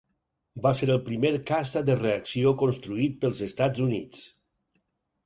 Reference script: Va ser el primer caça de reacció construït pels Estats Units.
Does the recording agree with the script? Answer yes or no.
yes